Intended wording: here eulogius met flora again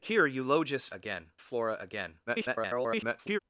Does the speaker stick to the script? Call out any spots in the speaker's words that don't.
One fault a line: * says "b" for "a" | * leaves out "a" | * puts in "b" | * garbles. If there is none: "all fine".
* says "again" for "met"
* garbles